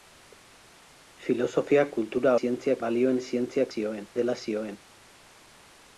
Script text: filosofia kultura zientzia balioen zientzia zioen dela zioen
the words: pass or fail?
pass